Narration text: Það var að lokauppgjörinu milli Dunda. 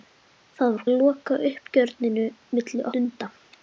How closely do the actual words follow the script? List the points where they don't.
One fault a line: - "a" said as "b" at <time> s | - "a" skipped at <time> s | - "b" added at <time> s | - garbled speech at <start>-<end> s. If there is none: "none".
none